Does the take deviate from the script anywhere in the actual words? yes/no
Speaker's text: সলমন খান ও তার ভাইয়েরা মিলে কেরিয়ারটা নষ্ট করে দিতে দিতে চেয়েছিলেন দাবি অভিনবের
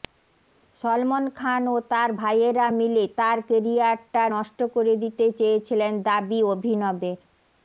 yes